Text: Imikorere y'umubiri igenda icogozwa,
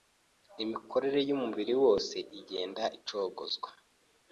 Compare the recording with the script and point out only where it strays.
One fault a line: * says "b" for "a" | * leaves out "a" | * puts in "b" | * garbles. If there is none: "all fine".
* puts in "wose"